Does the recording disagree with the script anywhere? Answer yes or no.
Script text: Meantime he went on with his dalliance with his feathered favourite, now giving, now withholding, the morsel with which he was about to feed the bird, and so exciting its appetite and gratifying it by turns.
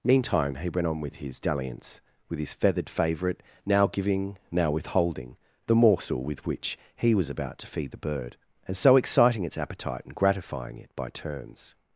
no